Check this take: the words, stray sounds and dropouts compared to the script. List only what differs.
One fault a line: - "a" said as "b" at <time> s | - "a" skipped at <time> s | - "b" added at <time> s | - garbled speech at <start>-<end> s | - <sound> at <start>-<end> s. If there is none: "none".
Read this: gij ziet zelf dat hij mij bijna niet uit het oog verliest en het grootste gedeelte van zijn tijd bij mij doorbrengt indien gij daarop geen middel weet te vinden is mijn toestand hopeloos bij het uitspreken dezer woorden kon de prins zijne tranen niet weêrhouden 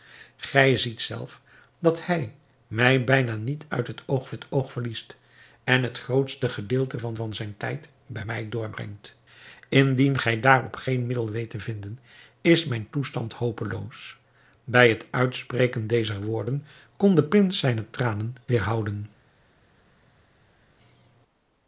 - "het oog" added at 4.3 s
- "van" added at 7.1 s
- "niet" skipped at 18.3 s